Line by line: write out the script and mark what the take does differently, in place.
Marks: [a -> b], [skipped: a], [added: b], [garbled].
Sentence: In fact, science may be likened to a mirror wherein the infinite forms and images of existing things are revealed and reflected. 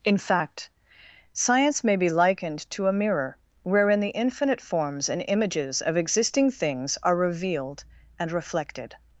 In fact, science may be likened to a mirror wherein the infinite forms and images of existing things are revealed and reflected.